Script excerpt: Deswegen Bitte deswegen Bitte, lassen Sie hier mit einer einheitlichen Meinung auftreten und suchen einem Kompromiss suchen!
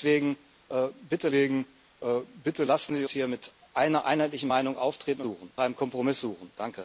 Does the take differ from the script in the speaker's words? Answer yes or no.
no